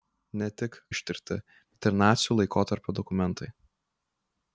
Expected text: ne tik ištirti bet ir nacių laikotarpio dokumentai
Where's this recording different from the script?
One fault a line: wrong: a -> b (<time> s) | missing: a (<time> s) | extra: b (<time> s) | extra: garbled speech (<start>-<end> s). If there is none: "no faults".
no faults